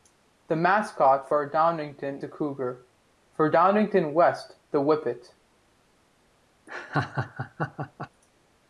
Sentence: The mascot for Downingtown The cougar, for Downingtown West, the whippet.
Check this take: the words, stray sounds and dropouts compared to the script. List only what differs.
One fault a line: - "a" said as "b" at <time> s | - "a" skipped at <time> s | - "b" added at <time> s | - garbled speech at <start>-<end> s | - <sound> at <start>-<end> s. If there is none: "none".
- laugh at 6.7-8.1 s